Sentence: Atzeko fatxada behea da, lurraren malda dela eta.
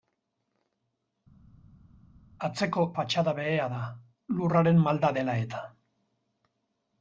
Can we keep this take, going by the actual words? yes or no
yes